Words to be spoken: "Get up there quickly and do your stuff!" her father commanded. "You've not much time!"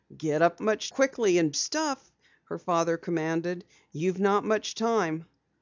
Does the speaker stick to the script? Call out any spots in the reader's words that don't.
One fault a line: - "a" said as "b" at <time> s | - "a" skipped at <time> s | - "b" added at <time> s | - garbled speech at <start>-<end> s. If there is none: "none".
- "there" said as "much" at 0.6 s
- "do your" skipped at 1.5 s